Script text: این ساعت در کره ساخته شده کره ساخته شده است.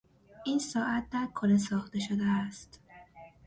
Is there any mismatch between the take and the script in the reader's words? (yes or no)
yes